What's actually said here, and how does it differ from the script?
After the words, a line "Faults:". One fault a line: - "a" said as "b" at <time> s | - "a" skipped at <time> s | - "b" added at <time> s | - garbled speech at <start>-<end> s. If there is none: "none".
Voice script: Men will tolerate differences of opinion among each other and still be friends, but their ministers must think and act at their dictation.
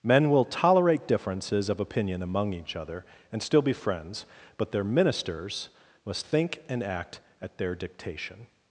Men will tolerate differences of opinion among each other and still be friends, but their ministers must think and act at their dictation.
Faults:
none